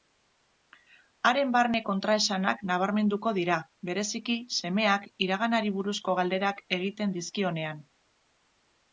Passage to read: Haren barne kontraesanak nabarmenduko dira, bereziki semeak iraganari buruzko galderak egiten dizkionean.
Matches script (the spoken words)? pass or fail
pass